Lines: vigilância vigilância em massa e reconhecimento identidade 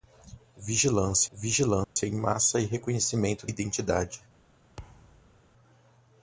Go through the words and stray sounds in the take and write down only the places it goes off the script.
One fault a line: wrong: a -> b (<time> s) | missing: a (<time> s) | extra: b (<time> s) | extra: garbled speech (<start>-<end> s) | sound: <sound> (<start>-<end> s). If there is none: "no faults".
sound: dropout (1.8-2.0 s)
sound: thud (4.8-5.4 s)